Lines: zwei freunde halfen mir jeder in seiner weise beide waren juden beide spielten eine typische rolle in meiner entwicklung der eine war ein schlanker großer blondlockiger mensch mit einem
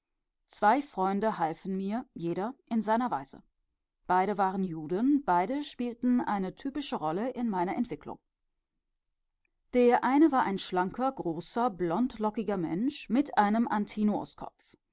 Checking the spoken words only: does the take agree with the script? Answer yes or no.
yes